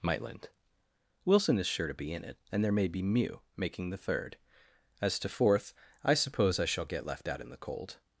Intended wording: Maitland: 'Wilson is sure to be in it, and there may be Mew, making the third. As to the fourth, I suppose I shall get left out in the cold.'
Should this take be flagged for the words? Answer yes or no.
yes